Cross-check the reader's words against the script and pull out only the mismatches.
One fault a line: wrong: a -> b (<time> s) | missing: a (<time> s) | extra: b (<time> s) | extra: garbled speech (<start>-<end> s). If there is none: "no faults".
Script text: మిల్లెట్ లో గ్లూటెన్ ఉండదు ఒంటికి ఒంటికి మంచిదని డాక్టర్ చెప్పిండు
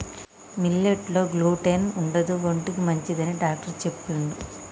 missing: ఒంటికి (2.8 s)